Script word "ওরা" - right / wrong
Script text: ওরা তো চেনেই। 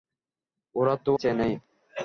right